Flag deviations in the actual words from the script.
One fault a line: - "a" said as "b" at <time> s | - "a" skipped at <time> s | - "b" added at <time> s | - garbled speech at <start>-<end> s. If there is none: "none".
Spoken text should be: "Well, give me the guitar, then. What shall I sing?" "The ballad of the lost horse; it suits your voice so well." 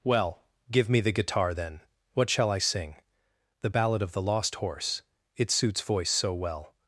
- "your" skipped at 5.8 s